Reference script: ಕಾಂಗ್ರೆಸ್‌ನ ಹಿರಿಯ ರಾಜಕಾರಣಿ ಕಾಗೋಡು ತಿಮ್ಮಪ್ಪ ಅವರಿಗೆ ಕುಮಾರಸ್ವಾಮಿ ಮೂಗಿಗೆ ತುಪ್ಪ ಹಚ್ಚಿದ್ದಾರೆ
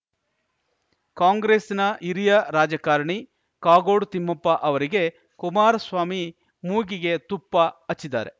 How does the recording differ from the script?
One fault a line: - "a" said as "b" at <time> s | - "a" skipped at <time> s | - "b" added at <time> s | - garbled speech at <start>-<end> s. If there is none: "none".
none